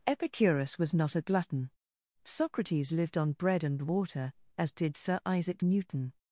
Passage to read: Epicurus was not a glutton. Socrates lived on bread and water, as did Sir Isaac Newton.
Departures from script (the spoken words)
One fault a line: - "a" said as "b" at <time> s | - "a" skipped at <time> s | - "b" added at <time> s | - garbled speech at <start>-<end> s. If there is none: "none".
none